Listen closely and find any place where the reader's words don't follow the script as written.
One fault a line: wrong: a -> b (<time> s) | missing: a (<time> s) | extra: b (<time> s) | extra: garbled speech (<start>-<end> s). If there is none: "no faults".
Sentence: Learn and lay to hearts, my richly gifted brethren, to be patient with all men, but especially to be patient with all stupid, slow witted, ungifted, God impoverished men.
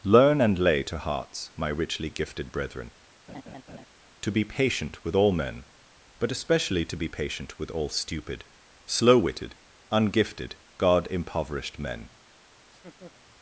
no faults